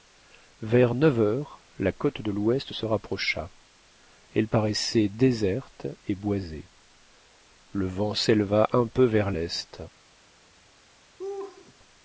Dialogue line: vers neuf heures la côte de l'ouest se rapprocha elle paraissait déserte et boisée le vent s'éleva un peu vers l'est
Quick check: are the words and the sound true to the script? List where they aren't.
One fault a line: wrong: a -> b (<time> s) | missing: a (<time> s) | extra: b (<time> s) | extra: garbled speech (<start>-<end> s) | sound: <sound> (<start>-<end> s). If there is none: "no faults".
sound: laugh (11.2-11.8 s)